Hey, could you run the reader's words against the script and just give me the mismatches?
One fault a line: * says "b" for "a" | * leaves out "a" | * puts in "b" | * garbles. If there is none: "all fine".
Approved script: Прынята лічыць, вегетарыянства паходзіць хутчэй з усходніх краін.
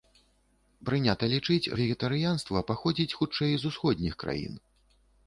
all fine